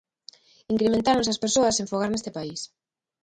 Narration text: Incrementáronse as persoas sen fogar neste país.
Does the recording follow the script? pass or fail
pass